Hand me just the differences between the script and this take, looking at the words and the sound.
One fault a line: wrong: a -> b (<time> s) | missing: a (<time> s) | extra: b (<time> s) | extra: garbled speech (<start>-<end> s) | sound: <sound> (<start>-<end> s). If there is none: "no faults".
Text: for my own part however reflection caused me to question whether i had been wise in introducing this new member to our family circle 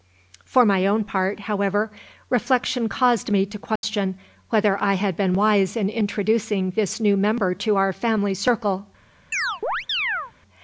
sound: dropout (3.8-3.8 s)
sound: chirp (9.3-10.3 s)